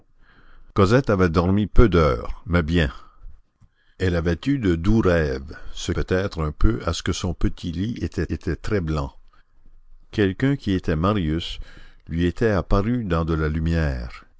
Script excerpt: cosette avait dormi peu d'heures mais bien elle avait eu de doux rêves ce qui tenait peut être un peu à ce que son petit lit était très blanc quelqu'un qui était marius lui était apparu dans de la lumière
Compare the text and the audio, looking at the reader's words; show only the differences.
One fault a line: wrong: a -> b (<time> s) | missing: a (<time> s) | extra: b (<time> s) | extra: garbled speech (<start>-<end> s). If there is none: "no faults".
missing: qui tenait (5.9 s)
extra: était (8.3 s)